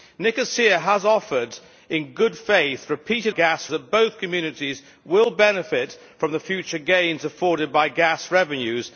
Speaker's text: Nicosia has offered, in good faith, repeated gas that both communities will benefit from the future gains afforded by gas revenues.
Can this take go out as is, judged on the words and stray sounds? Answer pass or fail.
pass